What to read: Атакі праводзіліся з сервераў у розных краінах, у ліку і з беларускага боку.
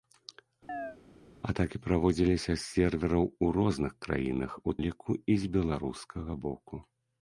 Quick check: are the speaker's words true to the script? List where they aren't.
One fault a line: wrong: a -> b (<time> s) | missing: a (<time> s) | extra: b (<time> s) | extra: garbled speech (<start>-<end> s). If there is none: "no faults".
no faults